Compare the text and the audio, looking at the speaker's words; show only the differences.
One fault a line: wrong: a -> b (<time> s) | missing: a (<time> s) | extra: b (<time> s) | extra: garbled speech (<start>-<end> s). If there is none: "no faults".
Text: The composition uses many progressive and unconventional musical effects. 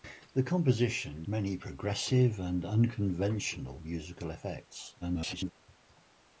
missing: uses (1.2 s)
extra: garbled speech (5.0-5.5 s)